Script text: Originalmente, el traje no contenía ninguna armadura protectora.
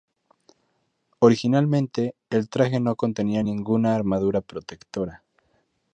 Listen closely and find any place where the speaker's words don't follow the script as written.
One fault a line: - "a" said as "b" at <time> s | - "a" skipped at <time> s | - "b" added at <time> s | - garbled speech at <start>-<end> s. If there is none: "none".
none